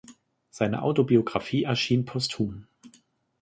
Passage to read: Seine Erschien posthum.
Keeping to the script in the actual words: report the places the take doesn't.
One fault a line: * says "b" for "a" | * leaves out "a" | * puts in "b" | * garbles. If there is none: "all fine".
* puts in "Autobiographie"